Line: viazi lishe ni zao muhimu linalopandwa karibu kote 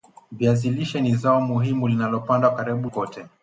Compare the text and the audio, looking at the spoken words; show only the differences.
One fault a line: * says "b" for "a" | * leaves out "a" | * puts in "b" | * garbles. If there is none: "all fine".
all fine